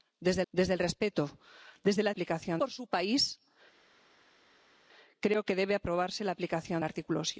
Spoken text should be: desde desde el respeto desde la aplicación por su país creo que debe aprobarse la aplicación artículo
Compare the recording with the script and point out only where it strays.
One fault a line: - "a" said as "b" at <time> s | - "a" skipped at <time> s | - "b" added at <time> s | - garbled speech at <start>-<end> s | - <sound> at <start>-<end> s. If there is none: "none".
none